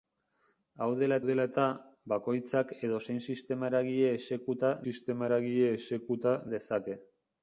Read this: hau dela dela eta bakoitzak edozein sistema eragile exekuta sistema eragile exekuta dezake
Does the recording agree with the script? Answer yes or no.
yes